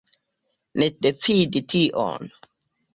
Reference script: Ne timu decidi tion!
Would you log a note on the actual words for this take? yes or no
yes